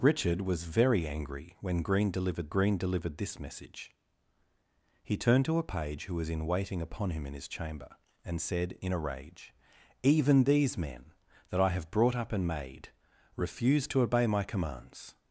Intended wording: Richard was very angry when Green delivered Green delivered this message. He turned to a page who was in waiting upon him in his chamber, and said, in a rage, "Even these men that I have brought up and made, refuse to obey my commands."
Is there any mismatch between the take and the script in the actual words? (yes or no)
no